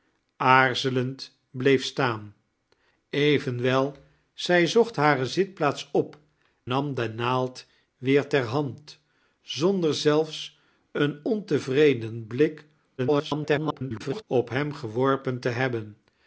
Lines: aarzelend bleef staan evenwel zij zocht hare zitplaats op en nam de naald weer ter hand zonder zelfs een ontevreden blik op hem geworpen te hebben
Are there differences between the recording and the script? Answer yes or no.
yes